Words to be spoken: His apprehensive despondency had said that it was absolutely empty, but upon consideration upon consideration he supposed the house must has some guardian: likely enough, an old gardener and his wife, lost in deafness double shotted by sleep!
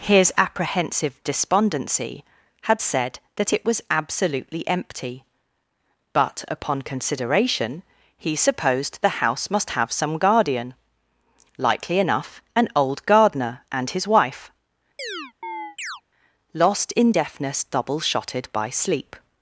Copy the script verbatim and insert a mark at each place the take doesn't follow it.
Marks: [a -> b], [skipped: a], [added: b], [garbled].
His apprehensive despondency had said that it was absolutely empty, but upon consideration [skipped: upon consideration] he supposed the house must [has -> have] some guardian: likely enough, an old gardener and his wife, lost in deafness double shotted by sleep!